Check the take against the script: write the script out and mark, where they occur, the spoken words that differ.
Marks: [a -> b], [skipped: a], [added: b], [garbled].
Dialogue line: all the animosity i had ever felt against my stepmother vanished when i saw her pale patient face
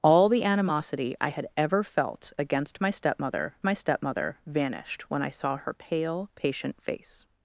all the animosity i had ever felt against my stepmother [added: my stepmother] vanished when i saw her pale patient face